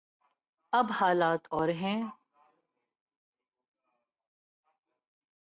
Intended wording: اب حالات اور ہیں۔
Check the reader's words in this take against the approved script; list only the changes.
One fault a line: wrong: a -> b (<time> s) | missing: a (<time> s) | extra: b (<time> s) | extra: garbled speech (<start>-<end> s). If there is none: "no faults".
no faults